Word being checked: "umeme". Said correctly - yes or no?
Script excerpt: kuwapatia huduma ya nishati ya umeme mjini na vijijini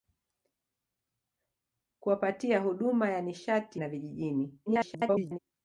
no